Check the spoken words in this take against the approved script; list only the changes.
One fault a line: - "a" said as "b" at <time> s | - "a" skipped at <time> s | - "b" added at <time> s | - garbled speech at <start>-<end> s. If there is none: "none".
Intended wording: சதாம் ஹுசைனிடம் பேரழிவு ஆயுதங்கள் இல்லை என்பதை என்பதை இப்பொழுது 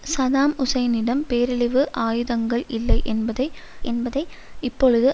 none